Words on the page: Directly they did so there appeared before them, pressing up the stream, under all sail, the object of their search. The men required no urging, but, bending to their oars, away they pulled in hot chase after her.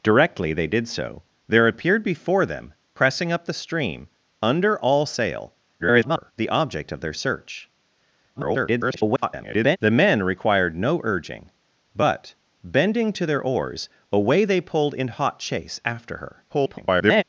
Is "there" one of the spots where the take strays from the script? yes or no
no